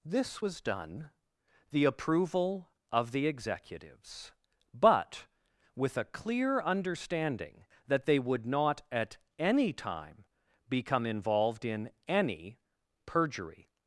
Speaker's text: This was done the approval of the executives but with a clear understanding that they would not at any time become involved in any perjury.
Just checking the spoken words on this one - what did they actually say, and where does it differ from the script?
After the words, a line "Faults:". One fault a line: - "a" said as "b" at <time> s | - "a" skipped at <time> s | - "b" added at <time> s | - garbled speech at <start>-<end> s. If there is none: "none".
This was done the approval of the executives but with a clear understanding that they would not at any time become involved in any perjury.
Faults:
none